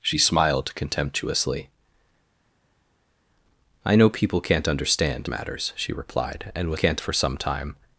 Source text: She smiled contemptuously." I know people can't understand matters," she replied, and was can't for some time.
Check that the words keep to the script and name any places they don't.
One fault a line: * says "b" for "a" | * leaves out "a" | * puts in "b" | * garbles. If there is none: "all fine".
all fine